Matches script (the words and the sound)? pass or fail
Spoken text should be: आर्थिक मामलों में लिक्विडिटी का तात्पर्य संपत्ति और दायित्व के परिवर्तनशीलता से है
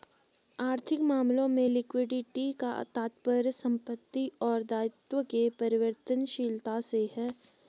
pass